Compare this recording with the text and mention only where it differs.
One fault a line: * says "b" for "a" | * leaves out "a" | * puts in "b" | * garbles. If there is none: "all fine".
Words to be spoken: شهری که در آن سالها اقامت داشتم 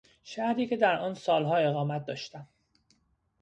all fine